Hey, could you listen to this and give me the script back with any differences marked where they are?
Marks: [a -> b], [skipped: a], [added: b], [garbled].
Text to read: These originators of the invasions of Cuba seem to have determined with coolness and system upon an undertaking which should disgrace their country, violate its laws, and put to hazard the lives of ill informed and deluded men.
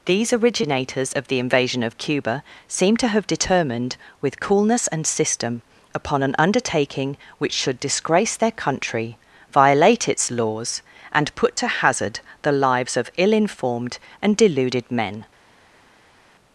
These originators of the [invasions -> invasion] of Cuba seem to have determined with coolness and system upon an undertaking which should disgrace their country, violate its laws, and put to hazard the lives of ill informed and deluded men.